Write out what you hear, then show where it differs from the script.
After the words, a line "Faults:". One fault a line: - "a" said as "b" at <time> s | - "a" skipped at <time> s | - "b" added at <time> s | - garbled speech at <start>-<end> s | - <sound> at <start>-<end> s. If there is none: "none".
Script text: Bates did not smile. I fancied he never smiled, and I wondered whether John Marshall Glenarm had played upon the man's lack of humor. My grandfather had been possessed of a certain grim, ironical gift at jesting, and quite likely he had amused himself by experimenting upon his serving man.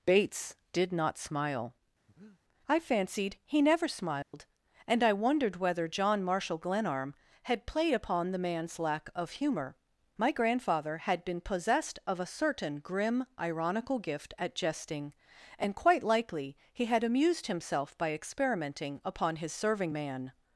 Bates did not smile. I fancied he never smiled, and I wondered whether John Marshall Glenarm had played upon the man's lack of humor. My grandfather had been possessed of a certain grim, ironical gift at jesting, and quite likely he had amused himself by experimenting upon his serving man.
Faults:
- breath at 2.1-2.4 s
- dropout at 4.2-4.3 s